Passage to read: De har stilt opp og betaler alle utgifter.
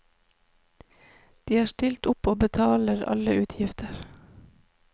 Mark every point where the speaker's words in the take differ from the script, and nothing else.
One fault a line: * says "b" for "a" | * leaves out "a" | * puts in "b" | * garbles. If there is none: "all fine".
all fine